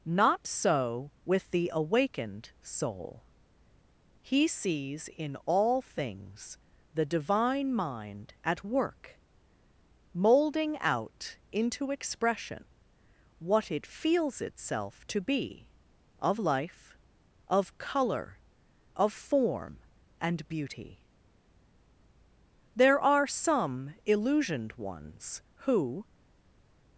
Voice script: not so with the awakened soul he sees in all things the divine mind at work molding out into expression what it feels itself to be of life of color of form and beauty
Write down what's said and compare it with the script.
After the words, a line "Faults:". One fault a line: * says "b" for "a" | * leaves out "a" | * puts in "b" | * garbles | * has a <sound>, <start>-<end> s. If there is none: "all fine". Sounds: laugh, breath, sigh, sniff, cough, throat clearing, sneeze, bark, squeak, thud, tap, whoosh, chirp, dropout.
not so with the awakened soul he sees in all things the divine mind at work molding out into expression what it feels itself to be of life of color of form and beauty there are some illusioned ones who
Faults:
* puts in "there are some illusioned ones who"